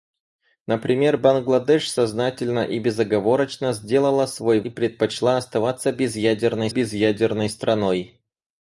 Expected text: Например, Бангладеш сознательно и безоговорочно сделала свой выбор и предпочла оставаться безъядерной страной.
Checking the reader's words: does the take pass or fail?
fail